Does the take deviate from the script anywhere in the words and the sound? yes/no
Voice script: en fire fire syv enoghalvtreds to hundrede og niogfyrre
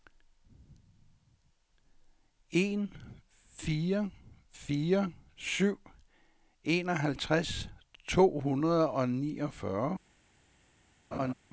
yes